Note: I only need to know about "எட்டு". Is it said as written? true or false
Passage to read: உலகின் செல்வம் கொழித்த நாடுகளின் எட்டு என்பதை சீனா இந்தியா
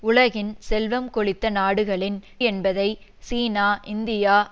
false